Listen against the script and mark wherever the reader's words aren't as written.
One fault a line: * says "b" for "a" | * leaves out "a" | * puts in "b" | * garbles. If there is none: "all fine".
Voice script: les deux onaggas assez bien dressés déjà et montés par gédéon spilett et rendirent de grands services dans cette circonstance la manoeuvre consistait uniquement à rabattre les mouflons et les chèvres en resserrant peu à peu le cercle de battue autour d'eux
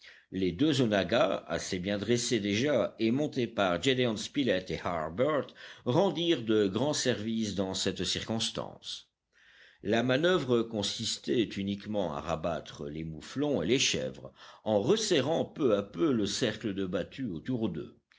* puts in "harbert"